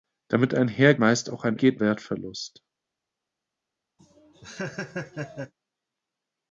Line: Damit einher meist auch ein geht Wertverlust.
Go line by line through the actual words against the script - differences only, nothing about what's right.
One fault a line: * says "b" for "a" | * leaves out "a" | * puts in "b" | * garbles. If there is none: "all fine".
all fine